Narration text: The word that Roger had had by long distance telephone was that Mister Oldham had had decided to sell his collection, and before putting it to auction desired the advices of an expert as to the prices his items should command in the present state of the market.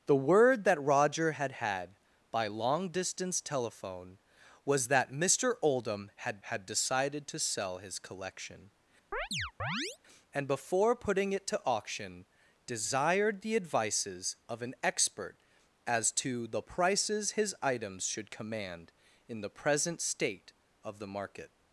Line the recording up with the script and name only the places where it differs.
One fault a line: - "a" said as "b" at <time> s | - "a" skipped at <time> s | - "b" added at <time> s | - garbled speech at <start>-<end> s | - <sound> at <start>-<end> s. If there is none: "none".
- chirp at 9.1-10.0 s